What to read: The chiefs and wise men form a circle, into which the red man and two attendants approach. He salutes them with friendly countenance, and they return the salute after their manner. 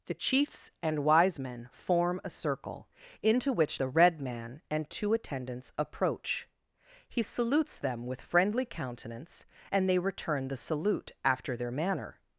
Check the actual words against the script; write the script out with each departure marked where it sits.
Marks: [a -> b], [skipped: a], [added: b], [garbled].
The chiefs and wise men form a circle, into which the red man and two attendants approach. He salutes them with friendly countenance, and they return the salute after their manner.